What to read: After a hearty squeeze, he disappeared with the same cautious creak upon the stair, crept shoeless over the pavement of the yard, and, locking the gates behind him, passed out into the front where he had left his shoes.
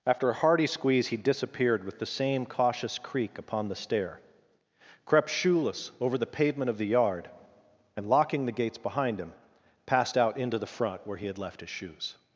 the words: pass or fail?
pass